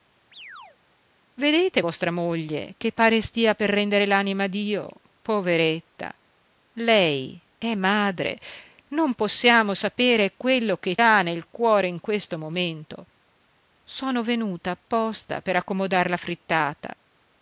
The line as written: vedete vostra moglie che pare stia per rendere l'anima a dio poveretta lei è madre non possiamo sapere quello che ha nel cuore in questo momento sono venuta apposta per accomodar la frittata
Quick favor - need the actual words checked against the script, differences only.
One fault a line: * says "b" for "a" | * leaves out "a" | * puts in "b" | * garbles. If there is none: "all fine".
all fine